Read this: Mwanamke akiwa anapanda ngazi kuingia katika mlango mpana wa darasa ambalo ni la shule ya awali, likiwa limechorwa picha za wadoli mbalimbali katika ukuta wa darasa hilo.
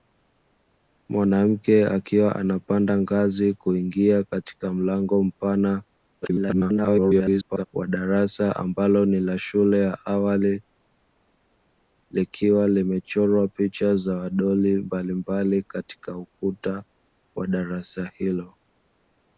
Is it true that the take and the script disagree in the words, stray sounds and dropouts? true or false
true